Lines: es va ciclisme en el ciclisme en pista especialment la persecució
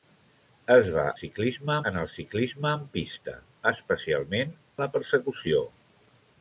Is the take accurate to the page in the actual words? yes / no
yes